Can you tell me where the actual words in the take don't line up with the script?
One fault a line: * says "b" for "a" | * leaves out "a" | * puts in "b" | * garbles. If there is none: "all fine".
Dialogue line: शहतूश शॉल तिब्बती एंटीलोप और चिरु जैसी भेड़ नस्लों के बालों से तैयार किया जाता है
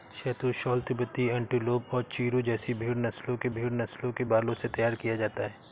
* puts in "भेड़ नस्लों के"